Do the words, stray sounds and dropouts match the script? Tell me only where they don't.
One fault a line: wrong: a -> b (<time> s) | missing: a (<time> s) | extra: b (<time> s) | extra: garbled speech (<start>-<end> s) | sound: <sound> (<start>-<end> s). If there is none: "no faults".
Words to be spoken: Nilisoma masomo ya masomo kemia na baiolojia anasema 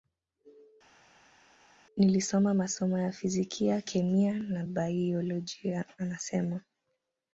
wrong: masomo -> fizikia (3.1 s)